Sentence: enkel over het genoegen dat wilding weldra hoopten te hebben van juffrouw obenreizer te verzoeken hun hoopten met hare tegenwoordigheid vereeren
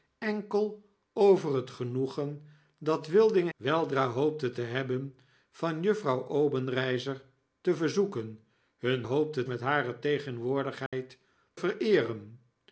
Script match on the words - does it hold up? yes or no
yes